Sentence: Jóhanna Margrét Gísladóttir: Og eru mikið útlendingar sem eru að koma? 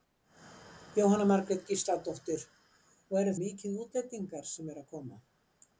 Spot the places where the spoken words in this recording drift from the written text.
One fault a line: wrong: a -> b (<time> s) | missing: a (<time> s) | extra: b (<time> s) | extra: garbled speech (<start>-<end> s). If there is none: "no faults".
no faults